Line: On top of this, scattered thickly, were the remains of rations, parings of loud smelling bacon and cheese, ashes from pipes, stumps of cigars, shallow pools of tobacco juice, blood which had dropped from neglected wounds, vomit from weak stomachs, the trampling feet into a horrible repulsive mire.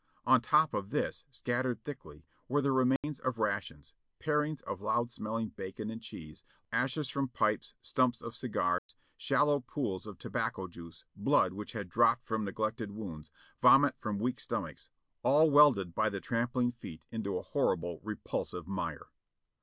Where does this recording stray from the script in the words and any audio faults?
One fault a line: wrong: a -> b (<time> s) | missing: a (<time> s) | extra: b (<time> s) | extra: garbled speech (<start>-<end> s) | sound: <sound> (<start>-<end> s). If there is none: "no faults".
sound: dropout (3.0-3.0 s)
sound: dropout (8.8-8.9 s)
extra: all welded by (15.2 s)